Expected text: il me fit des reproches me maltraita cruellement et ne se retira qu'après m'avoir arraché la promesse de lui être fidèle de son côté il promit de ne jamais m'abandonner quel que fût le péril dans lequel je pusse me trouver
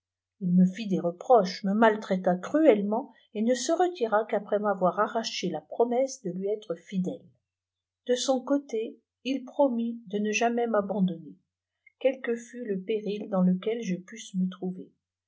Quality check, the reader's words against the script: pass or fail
pass